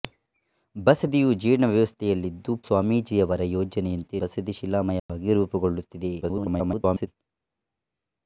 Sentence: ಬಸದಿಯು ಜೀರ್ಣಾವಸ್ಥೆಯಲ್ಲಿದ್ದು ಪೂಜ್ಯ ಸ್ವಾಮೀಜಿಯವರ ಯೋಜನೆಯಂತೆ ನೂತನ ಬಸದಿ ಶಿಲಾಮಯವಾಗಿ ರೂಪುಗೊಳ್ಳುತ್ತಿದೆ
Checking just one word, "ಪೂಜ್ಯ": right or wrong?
wrong